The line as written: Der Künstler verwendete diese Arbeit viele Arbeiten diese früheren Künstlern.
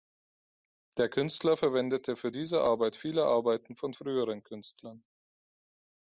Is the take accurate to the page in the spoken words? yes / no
no